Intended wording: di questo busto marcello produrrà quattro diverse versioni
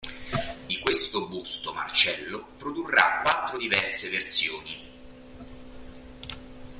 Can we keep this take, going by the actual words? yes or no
yes